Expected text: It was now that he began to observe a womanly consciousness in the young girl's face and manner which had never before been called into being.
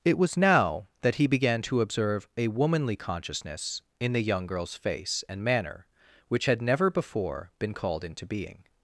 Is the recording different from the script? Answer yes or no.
no